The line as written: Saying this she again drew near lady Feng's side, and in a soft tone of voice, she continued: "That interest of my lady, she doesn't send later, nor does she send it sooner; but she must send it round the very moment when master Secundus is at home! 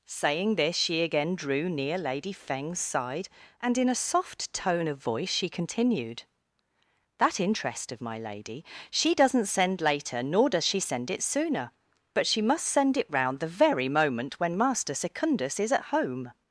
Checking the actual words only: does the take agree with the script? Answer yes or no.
yes